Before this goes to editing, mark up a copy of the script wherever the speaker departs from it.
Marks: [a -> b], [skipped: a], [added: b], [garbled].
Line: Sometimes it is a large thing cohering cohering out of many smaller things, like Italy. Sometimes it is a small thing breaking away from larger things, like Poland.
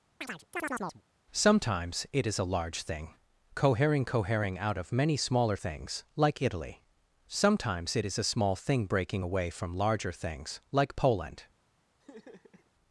Sometimes it is a large thing cohering cohering out of many smaller things, like Italy. Sometimes it is a small thing breaking away from larger things, like Poland.